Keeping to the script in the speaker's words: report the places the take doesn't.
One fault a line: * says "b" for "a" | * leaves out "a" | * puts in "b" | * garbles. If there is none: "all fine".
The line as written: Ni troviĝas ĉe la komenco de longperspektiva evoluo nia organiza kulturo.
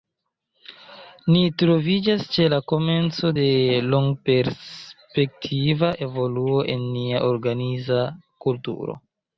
* puts in "en"